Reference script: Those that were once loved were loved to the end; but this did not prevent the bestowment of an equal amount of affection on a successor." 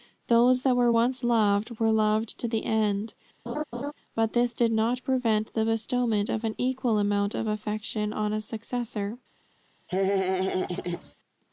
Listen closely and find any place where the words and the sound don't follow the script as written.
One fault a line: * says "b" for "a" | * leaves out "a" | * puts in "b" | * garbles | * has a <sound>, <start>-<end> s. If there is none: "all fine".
* has a laugh, 3.5-3.9 s
* has a laugh, 9.9-11.1 s